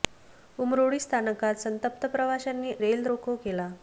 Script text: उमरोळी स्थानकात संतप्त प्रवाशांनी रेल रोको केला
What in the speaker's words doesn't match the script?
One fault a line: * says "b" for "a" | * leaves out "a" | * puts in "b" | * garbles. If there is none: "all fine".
all fine